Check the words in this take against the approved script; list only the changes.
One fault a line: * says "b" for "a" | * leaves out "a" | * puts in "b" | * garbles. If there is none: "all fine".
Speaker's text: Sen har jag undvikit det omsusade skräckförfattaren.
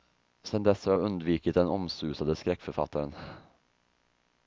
* puts in "dess"
* says "den" for "det"